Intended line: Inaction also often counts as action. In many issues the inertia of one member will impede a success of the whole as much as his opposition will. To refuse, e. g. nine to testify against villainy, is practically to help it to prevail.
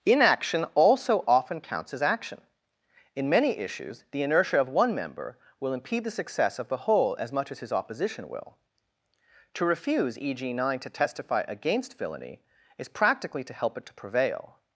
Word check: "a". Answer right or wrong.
wrong